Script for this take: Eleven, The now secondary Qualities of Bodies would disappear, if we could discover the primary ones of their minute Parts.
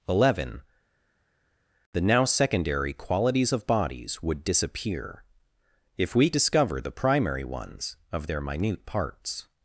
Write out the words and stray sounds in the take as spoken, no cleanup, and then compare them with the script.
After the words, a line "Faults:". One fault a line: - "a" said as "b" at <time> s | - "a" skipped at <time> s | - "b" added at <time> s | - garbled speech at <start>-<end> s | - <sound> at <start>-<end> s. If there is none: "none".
Eleven, The now secondary Qualities of Bodies would disappear, if we discover the primary ones of their minute Parts.
Faults:
- "could" skipped at 6.3 s